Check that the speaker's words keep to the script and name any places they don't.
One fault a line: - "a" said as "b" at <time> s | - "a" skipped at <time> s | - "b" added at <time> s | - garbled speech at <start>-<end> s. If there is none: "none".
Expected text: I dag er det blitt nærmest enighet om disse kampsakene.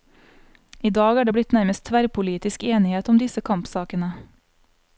- "tverrpolitisk" added at 1.9 s